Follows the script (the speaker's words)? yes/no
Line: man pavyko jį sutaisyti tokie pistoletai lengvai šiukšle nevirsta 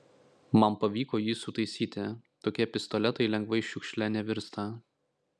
yes